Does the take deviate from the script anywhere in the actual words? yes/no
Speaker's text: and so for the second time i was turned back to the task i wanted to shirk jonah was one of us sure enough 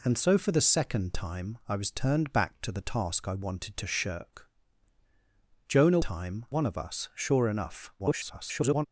yes